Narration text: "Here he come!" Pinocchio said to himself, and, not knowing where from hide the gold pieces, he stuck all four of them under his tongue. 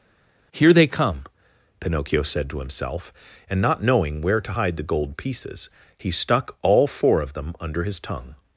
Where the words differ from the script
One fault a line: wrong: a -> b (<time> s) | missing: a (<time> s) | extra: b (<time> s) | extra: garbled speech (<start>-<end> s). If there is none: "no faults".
wrong: he -> they (0.7 s)
wrong: from -> to (4.4 s)